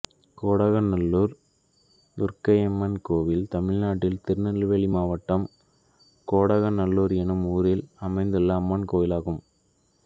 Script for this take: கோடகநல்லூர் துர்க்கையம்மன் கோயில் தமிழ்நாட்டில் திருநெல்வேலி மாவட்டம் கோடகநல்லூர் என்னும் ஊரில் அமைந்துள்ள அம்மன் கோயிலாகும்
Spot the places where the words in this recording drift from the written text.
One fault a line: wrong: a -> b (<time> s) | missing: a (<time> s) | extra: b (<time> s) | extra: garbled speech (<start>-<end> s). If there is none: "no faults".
no faults